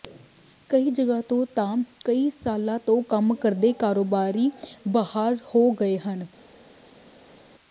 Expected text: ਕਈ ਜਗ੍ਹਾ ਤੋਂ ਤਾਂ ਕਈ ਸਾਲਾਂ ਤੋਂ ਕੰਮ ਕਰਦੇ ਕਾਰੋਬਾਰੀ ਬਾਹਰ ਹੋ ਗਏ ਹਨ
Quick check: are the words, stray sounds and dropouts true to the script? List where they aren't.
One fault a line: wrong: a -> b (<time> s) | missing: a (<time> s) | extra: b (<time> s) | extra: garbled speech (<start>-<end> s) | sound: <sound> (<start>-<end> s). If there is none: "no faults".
no faults